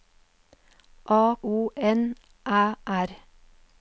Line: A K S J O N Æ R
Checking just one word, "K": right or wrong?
wrong